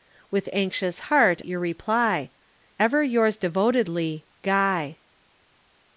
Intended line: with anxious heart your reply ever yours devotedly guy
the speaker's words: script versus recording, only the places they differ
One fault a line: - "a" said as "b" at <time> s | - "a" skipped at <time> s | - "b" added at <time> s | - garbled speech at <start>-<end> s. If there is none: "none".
none